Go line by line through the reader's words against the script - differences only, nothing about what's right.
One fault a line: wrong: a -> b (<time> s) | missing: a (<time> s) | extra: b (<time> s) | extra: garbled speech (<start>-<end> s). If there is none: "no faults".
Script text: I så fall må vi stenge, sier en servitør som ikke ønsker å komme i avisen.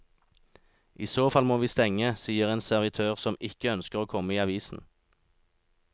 no faults